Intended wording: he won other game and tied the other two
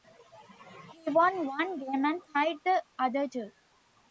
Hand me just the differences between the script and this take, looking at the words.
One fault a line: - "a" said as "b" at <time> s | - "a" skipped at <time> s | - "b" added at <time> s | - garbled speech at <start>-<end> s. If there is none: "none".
- "other" said as "one" at 1.4 s